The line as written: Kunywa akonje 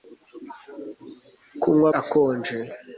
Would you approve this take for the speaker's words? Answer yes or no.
yes